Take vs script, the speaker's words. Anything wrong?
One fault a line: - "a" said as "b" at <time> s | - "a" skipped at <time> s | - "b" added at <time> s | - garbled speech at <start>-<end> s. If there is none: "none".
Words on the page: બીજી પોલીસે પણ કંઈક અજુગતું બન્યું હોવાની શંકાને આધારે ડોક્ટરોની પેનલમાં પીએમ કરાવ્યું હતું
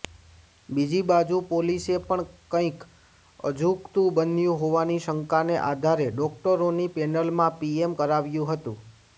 - "બાજુ" added at 1.1 s